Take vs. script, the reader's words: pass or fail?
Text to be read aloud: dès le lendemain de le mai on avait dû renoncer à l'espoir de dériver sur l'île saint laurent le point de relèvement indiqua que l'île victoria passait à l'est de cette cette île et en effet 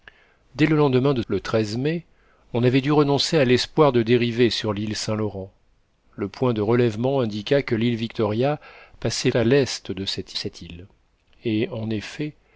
pass